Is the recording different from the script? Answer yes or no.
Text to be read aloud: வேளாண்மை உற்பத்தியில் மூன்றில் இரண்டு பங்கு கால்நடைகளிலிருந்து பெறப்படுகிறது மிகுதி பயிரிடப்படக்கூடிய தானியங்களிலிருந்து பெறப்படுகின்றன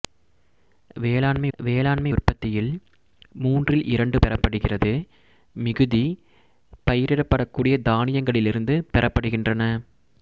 yes